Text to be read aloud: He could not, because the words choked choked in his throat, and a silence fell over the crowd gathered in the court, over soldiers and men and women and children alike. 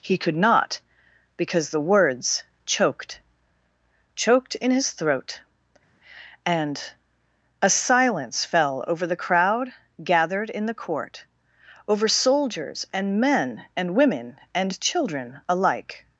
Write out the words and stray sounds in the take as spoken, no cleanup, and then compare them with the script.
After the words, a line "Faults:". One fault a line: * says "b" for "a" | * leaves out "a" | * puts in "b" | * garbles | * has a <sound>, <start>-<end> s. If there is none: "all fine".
He could not, because the words choked choked in his throat, and a silence fell over the crowd gathered in the court, over soldiers and men and women and children alike.
Faults:
all fine